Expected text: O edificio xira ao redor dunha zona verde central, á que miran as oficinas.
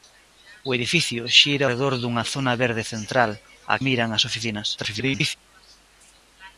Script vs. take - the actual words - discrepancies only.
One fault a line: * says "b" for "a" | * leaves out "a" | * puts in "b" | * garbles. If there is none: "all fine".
* leaves out "ao"
* leaves out "que"
* garbles